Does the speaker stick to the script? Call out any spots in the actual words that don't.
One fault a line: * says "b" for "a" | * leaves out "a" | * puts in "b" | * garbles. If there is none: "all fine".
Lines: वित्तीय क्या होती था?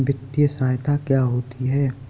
* puts in "सहायता"
* says "है" for "था"